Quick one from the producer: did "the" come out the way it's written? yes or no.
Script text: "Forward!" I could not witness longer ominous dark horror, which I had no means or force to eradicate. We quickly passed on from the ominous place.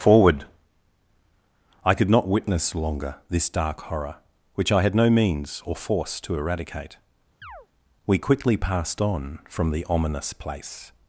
yes